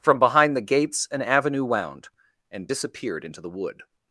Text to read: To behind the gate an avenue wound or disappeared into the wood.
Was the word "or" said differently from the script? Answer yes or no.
yes